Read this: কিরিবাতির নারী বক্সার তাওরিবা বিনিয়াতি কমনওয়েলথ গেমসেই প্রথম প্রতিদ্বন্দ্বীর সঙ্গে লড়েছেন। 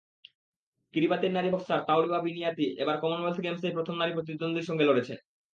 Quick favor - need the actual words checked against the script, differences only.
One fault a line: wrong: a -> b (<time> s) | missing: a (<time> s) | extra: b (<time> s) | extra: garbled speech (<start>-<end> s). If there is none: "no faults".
extra: এবার (2.8 s)
extra: নারী (4.0 s)